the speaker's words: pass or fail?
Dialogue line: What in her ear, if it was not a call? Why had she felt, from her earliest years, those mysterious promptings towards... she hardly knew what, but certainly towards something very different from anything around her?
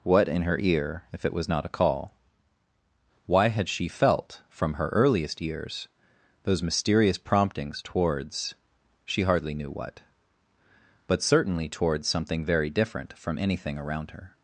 pass